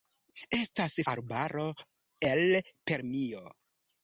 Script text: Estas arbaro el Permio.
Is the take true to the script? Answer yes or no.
yes